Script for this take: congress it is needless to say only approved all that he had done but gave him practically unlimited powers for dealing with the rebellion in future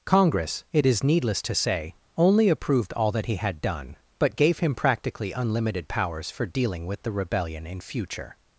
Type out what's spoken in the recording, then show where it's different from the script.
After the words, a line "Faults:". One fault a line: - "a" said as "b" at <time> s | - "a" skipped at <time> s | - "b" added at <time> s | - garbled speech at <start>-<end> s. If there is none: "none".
congress it is needless to say only approved all that he had done but gave him practically unlimited powers for dealing with the rebellion in future
Faults:
none